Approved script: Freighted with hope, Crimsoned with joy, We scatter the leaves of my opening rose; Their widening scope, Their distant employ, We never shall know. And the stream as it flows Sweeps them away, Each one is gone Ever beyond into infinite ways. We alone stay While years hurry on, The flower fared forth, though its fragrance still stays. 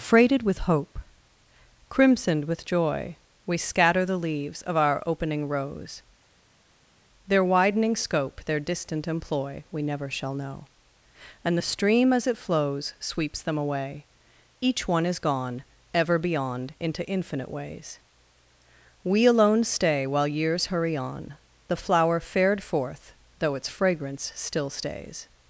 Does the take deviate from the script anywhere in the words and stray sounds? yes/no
yes